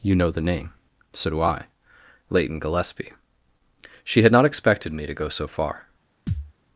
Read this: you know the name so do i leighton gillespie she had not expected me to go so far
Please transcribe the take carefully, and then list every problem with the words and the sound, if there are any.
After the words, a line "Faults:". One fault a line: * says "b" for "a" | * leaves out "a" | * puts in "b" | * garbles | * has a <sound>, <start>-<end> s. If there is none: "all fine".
you know the name so do i leighton gillespie she had not expected me to go so far
Faults:
* has a thud, 6.3-6.5 s